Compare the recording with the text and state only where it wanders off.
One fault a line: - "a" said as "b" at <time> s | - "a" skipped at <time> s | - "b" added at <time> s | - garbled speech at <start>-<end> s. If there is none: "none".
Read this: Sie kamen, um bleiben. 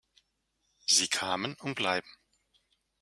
none